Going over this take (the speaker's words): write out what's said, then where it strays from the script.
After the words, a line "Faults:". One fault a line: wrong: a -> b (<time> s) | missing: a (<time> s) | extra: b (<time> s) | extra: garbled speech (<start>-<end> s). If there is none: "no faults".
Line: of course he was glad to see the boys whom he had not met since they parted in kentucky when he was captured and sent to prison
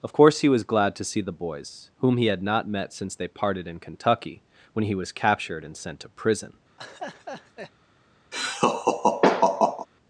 of course he was glad to see the boys whom he had not met since they parted in kentucky when he was captured and sent to prison
Faults:
no faults